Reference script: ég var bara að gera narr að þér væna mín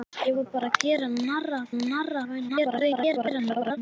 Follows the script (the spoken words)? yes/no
no